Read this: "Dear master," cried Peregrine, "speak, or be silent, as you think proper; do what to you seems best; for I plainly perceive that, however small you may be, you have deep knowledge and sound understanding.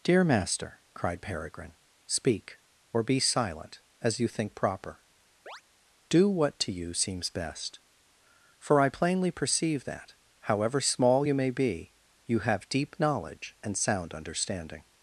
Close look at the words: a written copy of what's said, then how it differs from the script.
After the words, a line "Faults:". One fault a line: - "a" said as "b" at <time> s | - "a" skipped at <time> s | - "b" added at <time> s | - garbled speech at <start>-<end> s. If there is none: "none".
"Dear master," cried Peregrine, "speak, or be silent, as you think proper; do what to you seems best; for I plainly perceive that, however small you may be, you have deep knowledge and sound understanding.
Faults:
none